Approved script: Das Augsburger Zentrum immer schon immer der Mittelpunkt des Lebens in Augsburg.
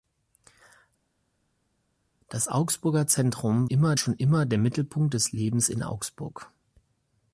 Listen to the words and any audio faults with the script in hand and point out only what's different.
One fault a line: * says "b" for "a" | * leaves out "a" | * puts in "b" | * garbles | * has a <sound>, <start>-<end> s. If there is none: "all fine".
all fine